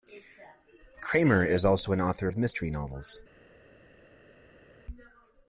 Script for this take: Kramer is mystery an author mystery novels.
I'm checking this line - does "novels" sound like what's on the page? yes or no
yes